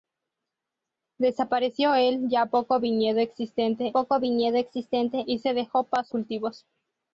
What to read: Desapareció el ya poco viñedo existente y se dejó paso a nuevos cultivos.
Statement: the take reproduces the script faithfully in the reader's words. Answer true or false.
false